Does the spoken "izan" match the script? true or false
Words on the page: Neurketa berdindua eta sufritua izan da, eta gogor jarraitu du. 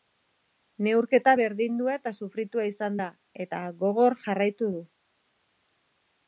true